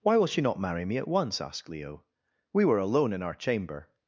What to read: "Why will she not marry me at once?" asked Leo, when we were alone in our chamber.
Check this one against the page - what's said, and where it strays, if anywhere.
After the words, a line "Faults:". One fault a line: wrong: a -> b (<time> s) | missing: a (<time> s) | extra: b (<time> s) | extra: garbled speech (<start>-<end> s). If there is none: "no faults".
"Why will she not marry me at once?" asked Leo, we were alone in our chamber.
Faults:
missing: when (2.0 s)